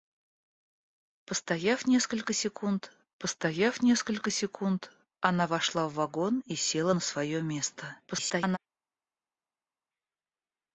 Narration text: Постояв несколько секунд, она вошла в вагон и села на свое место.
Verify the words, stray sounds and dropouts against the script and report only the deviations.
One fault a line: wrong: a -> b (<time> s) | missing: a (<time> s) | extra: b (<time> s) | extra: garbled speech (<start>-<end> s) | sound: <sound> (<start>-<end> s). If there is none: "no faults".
extra: постояв несколько секунд (3.2 s)
extra: garbled speech (8.1-8.6 s)